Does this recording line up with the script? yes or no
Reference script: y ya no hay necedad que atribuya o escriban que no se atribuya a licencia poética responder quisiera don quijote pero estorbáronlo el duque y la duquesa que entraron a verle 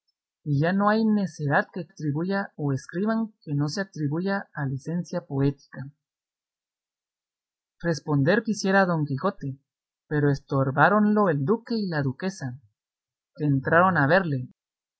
yes